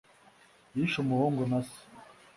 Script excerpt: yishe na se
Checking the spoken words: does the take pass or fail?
fail